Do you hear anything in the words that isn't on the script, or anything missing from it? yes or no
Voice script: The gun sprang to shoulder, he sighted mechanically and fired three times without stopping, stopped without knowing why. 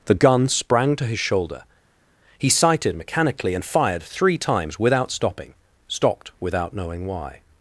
yes